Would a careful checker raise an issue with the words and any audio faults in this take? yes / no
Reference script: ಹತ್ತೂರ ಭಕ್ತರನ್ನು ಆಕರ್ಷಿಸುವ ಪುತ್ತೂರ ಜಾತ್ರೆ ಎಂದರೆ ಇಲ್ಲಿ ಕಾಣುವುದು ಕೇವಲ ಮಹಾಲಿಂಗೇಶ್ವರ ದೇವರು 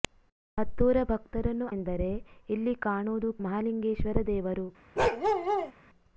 yes